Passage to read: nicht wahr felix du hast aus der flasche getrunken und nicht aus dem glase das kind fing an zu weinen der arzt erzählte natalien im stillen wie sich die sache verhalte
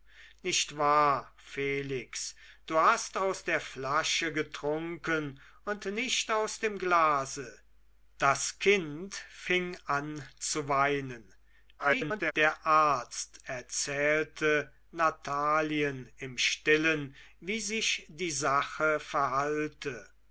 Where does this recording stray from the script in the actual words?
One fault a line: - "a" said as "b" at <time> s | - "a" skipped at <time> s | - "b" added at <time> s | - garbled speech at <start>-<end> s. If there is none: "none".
- garbled speech at 11.8-12.3 s